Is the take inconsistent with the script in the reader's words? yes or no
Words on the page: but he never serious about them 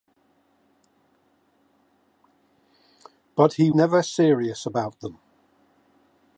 no